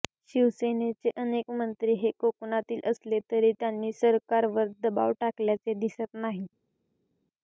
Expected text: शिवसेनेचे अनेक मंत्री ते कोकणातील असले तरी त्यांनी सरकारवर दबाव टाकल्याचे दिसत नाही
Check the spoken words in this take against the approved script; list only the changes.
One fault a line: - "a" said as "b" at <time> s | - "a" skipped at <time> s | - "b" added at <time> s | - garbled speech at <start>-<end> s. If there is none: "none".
- "ते" said as "हे" at 2.0 s